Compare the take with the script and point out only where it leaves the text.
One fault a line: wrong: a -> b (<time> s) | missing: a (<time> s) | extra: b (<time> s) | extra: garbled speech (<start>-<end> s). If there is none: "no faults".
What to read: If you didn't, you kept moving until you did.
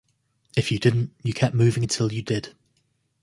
no faults